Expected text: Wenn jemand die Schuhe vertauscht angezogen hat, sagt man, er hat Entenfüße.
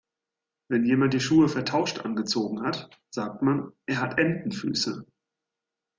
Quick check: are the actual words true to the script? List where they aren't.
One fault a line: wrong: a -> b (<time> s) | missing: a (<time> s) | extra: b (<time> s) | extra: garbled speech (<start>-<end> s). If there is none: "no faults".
no faults